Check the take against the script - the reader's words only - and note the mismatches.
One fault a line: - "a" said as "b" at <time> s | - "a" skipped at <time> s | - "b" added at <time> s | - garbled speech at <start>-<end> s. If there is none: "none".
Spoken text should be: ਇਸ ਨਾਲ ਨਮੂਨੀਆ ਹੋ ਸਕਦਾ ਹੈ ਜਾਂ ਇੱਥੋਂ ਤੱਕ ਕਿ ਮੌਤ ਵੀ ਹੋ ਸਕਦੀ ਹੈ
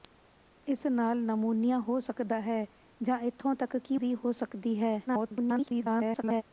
- "ਮੌਤ" skipped at 4.0 s
- garbled speech at 5.1-6.4 s